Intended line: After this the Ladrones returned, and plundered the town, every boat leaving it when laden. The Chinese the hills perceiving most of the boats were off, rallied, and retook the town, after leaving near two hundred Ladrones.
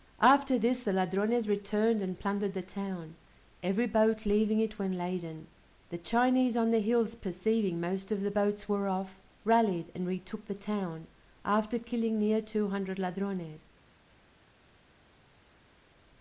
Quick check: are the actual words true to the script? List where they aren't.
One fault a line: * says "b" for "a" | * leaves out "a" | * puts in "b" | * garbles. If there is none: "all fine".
* puts in "on"
* says "killing" for "leaving"